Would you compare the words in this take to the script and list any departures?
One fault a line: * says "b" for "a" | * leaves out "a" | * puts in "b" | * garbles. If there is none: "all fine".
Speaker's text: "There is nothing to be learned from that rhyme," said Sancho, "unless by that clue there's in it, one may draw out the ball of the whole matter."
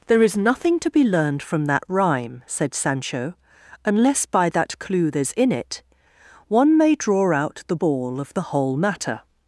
all fine